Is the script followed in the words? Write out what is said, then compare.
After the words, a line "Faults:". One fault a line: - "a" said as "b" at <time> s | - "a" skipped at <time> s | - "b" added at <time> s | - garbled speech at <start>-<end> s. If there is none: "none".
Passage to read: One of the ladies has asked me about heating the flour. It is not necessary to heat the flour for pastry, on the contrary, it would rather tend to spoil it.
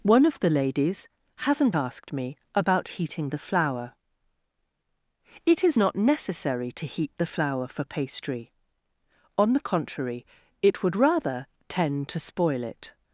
One of the ladies hasn't asked me about heating the flour. It is not necessary to heat the flour for pastry, on the contrary, it would rather tend to spoil it.
Faults:
- "has" said as "hasn't" at 1.4 s